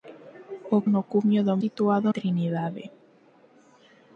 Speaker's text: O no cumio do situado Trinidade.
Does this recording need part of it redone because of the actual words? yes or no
no